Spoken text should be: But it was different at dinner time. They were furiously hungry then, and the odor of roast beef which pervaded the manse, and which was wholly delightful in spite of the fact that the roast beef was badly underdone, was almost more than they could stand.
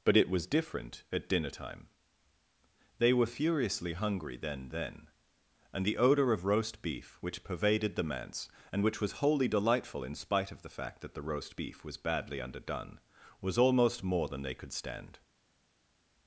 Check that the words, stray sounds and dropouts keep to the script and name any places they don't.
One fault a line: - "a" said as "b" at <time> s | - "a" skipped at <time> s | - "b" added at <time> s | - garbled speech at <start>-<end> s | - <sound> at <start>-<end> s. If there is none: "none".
- "then" added at 4.7 s